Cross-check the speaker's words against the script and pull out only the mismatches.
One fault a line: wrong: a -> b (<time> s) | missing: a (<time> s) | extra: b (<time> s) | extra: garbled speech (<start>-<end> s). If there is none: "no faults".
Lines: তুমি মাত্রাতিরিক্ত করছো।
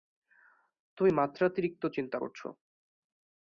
extra: চিন্তা (1.9 s)